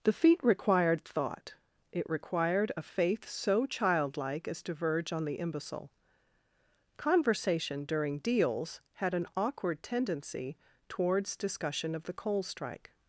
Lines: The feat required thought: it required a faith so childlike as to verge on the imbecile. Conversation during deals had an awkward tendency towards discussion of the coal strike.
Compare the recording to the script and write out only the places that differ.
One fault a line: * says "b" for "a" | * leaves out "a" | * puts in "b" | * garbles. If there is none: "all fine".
all fine